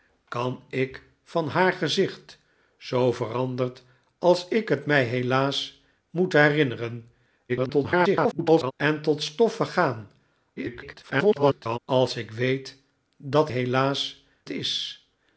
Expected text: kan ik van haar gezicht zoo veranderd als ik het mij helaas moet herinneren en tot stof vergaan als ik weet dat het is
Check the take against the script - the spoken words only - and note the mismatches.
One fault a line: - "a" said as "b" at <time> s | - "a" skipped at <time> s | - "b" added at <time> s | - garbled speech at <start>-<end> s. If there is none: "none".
- garbled speech at 7.5-8.7 s
- garbled speech at 10.6-11.8 s
- "het" said as "helaas" at 13.5 s